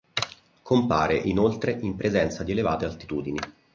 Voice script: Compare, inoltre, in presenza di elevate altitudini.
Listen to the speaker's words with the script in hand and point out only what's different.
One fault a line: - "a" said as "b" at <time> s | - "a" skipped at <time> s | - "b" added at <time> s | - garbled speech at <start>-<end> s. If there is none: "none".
none